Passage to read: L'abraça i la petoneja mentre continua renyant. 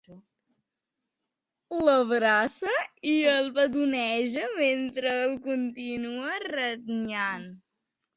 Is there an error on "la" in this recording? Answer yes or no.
yes